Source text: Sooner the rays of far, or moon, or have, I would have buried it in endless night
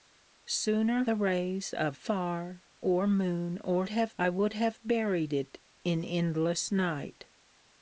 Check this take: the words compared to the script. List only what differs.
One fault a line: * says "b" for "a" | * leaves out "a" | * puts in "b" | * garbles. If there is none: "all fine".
all fine